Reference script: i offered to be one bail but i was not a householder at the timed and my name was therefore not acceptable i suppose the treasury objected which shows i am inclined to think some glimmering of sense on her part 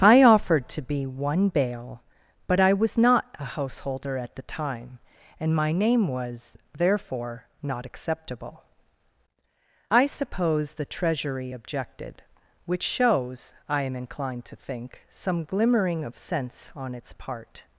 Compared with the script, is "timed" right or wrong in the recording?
wrong